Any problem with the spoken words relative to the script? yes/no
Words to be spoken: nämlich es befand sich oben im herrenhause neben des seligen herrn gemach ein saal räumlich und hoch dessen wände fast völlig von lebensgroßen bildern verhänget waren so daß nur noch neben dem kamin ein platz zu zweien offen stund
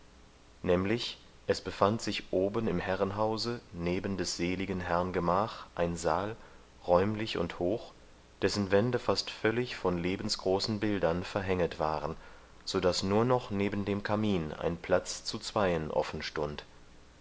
no